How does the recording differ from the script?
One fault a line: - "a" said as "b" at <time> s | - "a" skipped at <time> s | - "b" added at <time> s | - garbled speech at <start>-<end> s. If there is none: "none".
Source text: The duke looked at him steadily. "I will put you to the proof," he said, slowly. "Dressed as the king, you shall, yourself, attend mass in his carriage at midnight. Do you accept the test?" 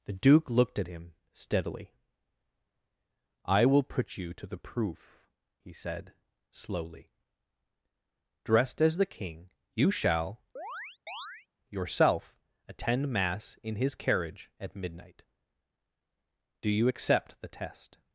none